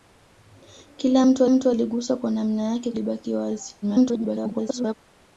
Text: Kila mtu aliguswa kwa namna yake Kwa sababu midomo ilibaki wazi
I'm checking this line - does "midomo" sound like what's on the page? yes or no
no